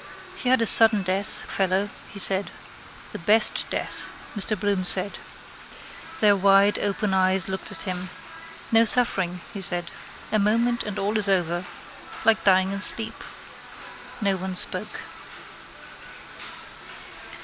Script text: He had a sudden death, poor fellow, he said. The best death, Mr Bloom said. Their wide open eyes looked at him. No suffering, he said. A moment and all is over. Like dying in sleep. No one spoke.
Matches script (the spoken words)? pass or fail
fail